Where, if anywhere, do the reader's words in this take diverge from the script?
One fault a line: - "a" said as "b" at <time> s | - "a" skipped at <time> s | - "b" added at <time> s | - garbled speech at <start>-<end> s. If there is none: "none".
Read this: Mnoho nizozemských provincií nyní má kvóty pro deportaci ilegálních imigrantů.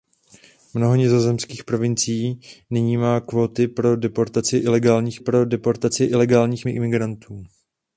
- "pro deportaci ilegálních" added at 5.2 s